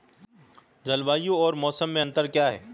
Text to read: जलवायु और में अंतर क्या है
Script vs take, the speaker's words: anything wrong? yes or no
yes